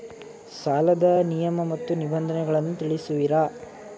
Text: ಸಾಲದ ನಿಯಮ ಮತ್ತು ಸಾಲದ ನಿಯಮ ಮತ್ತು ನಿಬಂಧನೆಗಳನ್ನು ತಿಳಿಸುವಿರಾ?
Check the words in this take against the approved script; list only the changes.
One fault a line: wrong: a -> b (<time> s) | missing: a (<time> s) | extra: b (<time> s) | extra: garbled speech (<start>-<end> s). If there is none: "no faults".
missing: ಸಾಲದ ನಿಯಮ ಮತ್ತು (1.9 s)